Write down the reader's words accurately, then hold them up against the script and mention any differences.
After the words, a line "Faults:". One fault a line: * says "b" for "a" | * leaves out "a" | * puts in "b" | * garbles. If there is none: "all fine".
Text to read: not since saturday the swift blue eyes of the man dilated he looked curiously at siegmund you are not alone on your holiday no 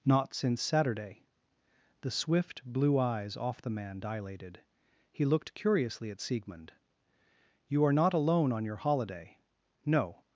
not since saturday the swift blue eyes off the man dilated he looked curiously at siegmund you are not alone on your holiday no
Faults:
* says "off" for "of"